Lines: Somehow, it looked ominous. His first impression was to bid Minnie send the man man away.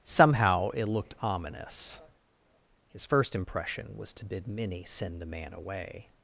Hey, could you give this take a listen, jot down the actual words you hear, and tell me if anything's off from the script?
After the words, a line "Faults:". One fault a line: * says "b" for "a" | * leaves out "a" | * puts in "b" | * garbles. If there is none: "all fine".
Somehow, it looked ominous. His first impression was to bid Minnie send the man away.
Faults:
* leaves out "man"